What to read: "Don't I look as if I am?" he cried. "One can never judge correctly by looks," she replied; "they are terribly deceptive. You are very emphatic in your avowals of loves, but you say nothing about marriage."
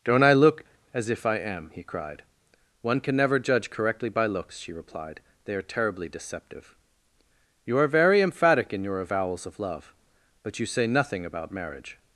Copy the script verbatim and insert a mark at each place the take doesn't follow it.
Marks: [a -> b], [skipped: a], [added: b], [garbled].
"Don't I look as if I am?" he cried. "One can never judge correctly by looks," she replied; "they are terribly deceptive. You are very emphatic in your avowals of [loves, -> love] but you say nothing about marriage."